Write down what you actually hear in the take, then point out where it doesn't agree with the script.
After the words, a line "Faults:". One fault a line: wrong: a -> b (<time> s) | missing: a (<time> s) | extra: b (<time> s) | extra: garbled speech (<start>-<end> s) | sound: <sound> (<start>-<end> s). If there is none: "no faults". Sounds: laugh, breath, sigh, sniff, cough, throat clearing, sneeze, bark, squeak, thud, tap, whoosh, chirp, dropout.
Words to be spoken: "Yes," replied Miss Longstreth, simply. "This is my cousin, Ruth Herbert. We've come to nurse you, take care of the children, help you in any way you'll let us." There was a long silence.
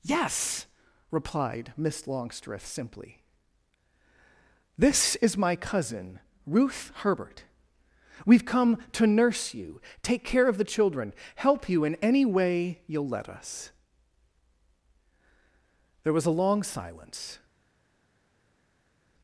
"Yes," replied Miss Longstreth, simply. "This is my cousin, Ruth Herbert. We've come to nurse you, take care of the children, help you in any way you'll let us." There was a long silence.
Faults:
no faults